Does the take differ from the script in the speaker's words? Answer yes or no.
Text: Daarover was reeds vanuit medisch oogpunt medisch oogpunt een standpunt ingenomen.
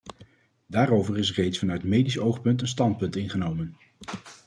yes